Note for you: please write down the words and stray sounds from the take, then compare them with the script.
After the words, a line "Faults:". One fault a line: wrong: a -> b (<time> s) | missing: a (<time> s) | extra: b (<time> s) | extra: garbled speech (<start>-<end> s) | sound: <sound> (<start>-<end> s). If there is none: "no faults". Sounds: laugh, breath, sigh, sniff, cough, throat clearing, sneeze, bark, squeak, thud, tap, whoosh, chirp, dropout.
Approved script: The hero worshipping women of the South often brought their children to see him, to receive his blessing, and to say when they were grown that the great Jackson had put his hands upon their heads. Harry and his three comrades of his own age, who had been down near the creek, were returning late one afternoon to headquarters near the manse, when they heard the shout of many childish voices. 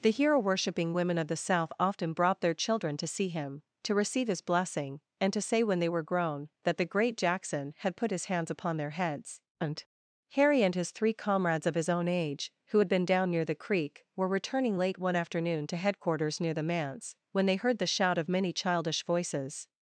The hero worshipping women of the South often brought their children to see him, to receive his blessing, and to say when they were grown that the great Jackson had put his hands upon their heads. and Harry and his three comrades of his own age, who had been down near the creek, were returning late one afternoon to headquarters near the manse, when they heard the shout of many childish voices.
Faults:
extra: and (9.6 s)